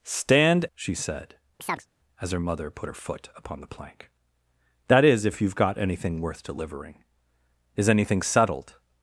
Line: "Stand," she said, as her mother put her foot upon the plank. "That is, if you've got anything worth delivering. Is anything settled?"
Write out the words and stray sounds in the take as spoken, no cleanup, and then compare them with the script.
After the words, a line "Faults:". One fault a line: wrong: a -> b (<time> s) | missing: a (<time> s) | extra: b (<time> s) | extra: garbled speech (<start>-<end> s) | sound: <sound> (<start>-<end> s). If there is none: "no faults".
"Stand," she said, as her mother put her foot upon the plank. "That is, if you've got anything worth delivering. Is anything settled?"
Faults:
sound: chirp (1.6-1.9 s)